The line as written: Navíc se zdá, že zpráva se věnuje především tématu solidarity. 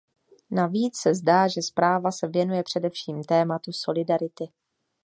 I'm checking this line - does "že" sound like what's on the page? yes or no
yes